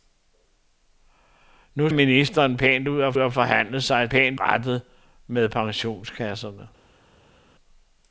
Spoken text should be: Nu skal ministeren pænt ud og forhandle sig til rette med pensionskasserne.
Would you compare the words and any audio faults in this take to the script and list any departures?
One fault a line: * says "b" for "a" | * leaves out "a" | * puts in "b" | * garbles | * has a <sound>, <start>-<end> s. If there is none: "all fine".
* leaves out "skal"
* puts in "og"
* says "pænt" for "til"